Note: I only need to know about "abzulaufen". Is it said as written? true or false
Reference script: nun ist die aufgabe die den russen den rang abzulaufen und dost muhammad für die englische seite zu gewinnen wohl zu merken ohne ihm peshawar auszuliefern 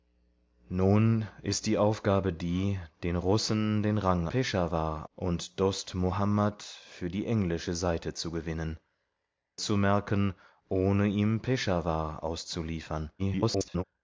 false